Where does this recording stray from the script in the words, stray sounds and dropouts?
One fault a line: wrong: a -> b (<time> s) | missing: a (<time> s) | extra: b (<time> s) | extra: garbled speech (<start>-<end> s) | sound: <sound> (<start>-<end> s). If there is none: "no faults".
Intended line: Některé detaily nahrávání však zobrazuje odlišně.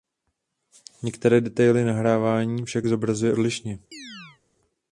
sound: chirp (3.9-4.4 s)